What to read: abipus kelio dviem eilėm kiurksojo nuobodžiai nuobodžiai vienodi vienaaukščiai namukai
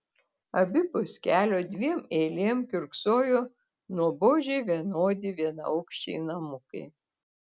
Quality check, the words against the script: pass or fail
fail